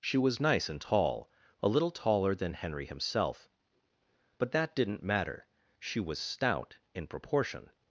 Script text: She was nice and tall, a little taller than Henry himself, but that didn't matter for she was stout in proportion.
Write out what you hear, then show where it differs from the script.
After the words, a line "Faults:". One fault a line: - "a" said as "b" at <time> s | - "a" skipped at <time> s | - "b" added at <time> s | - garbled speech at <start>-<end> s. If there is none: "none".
She was nice and tall, a little taller than Henry himself, but that didn't matter she was stout in proportion.
Faults:
- "for" skipped at 5.5 s